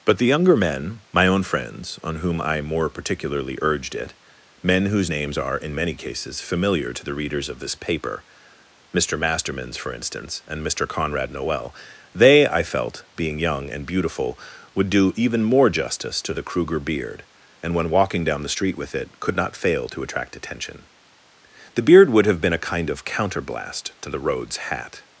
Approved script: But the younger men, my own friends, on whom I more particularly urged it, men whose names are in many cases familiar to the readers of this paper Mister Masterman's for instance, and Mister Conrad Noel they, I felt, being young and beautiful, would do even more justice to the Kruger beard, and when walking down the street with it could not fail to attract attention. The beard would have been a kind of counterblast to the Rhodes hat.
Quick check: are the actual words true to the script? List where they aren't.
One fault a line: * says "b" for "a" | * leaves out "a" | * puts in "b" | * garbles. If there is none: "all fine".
all fine